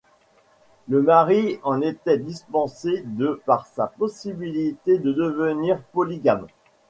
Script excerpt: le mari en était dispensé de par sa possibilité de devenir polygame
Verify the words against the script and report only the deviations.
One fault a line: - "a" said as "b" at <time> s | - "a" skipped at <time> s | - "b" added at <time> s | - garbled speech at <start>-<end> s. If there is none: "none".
none